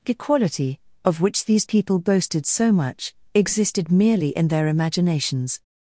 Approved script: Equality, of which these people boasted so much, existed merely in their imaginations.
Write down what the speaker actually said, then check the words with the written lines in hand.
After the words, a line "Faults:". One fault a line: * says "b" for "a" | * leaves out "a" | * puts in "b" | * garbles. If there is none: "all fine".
Equality, of which these people boasted so much, existed merely in their imaginations.
Faults:
all fine